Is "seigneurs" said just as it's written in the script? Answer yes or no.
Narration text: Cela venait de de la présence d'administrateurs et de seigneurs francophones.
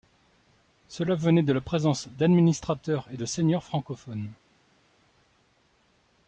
yes